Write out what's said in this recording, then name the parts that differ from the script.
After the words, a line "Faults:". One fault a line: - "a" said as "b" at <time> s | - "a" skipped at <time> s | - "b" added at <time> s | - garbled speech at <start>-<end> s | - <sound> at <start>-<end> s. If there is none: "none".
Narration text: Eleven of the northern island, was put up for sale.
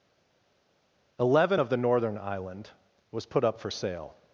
Eleven of the northern island, was put up for sale.
Faults:
none